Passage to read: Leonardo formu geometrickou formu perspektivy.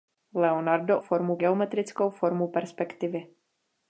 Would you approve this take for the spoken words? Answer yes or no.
yes